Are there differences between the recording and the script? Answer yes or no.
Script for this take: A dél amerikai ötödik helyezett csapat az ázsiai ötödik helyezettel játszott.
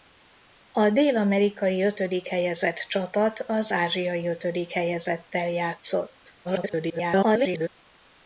yes